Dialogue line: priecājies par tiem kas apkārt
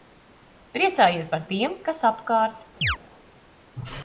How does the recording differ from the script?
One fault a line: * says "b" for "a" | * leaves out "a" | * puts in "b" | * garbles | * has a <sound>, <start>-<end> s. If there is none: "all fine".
* has a chirp, 2.8-3.0 s